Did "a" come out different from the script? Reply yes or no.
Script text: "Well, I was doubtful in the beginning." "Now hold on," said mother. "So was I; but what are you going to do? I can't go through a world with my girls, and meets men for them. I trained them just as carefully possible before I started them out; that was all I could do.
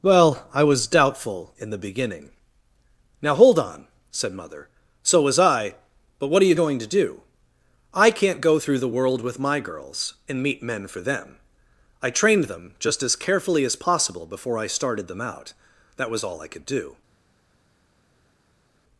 yes